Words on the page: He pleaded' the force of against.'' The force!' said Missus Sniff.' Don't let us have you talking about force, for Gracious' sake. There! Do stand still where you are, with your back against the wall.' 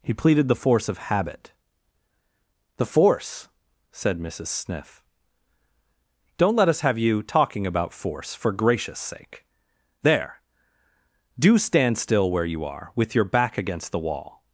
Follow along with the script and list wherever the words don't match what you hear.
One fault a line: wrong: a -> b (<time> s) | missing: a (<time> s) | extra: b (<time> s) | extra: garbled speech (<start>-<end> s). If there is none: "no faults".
wrong: against -> habit (1.1 s)